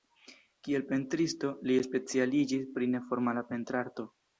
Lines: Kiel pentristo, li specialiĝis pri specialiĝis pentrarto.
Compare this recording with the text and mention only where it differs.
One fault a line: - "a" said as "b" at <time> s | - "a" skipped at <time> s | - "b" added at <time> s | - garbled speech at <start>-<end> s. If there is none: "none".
- "specialiĝis" said as "neformala" at 3.0 s